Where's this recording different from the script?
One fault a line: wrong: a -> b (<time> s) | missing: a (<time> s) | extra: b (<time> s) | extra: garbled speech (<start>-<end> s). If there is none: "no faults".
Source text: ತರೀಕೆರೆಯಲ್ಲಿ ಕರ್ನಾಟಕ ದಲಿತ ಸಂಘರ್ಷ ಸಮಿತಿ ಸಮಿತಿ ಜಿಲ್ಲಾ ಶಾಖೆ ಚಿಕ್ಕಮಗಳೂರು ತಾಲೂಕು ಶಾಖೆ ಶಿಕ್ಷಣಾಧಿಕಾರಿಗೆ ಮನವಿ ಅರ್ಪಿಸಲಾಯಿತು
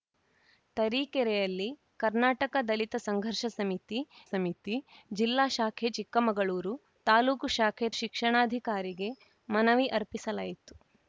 no faults